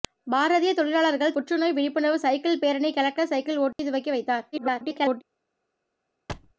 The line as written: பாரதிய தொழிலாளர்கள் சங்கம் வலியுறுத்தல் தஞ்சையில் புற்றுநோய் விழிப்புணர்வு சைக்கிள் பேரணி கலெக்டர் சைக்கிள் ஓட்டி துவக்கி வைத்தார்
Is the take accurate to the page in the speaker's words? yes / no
no